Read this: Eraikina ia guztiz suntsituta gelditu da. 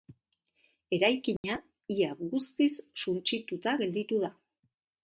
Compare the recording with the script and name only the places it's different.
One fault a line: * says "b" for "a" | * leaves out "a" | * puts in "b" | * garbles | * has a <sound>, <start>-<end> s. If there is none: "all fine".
* has a dropout, 1.4-1.4 s